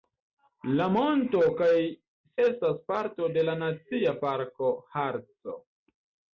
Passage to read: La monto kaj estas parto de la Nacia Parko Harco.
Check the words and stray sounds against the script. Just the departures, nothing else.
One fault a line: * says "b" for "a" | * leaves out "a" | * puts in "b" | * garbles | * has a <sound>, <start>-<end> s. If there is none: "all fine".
all fine